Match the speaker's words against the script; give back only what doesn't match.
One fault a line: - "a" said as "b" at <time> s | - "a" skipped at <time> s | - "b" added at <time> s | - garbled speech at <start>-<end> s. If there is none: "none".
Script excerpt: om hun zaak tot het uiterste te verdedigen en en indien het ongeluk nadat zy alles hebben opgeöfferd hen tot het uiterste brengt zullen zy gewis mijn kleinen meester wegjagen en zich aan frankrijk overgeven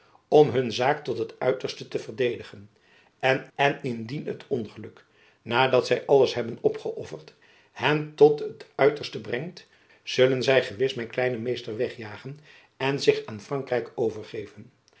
none